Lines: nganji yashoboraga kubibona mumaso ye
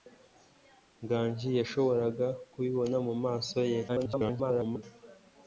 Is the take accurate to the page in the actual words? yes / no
no